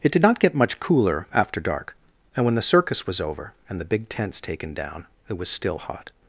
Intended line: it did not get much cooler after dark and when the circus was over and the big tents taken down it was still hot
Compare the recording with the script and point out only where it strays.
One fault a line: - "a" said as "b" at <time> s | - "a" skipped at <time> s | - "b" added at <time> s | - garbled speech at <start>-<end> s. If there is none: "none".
none